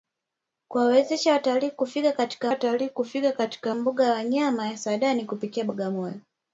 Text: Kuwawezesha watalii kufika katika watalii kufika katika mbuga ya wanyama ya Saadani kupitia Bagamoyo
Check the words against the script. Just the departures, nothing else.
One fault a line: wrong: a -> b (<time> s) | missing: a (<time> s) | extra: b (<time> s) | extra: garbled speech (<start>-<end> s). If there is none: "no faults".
no faults